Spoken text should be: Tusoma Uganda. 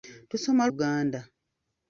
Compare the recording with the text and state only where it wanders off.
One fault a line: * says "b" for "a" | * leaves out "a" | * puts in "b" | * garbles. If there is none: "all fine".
all fine